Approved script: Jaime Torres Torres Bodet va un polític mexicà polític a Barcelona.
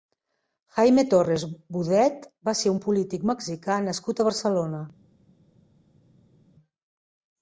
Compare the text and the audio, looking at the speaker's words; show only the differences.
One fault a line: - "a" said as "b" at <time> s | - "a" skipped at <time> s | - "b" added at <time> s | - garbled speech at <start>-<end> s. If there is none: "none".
- "Torres" skipped at 1.4 s
- "ser" added at 2.6 s
- "polític" said as "nascut" at 3.9 s